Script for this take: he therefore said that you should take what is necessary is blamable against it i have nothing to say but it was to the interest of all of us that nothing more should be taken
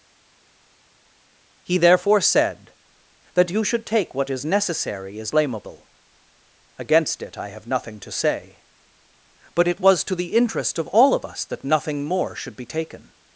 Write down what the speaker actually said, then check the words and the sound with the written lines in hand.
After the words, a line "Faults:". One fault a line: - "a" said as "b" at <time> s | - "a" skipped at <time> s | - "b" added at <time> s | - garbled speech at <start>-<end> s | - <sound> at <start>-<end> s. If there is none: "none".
he therefore said that you should take what is necessary is blamable against it i have nothing to say but it was to the interest of all of us that nothing more should be taken
Faults:
none